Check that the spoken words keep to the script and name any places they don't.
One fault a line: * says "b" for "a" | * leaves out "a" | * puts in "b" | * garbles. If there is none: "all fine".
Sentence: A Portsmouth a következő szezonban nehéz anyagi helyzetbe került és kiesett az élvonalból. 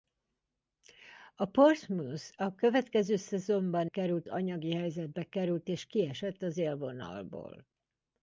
* says "került" for "nehéz"